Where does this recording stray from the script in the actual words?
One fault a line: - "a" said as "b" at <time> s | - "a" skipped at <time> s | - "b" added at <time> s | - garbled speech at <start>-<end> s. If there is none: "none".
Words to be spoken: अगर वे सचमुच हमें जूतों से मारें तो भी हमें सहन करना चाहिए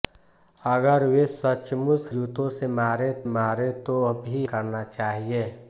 - "हमें" skipped at 2.1 s
- "मारें" added at 3.3 s
- "हमें सहन" skipped at 4.5 s